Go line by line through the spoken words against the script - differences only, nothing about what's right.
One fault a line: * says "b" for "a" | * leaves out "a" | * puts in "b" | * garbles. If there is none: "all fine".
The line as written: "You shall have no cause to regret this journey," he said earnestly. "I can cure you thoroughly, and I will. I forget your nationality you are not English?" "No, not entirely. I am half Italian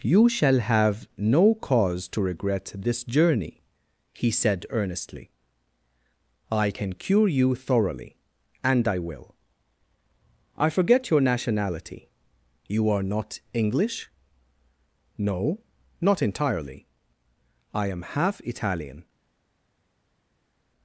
all fine